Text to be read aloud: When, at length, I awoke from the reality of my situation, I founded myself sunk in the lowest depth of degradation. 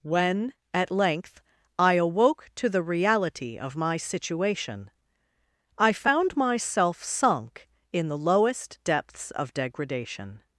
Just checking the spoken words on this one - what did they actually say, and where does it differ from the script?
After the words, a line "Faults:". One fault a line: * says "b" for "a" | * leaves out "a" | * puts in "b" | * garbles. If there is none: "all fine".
When, at length, I awoke to the reality of my situation, I found myself sunk in the lowest depths of degradation.
Faults:
* says "to" for "from"
* says "found" for "founded"
* says "depths" for "depth"